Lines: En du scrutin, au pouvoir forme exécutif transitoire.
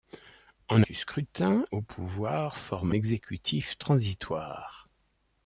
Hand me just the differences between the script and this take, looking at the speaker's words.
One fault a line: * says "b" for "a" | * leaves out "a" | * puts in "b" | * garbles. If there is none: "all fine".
all fine